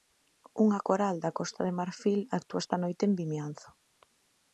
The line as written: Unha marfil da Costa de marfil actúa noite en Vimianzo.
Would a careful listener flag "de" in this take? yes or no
no